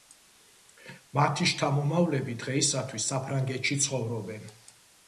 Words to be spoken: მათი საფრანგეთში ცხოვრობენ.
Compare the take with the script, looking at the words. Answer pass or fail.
fail